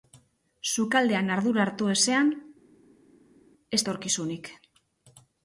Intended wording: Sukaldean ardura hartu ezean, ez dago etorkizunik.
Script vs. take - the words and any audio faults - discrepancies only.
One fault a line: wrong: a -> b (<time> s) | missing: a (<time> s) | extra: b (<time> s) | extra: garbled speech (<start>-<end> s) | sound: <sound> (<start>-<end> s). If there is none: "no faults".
missing: dago (3.8 s)